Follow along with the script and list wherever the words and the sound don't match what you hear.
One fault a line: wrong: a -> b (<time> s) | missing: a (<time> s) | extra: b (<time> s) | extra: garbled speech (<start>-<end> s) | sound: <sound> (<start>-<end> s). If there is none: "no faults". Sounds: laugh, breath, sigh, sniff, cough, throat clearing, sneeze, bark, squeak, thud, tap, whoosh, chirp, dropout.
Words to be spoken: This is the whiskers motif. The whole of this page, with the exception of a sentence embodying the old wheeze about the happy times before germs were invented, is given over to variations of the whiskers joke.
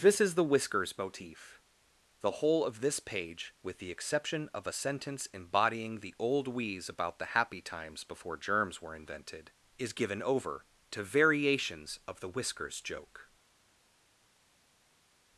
no faults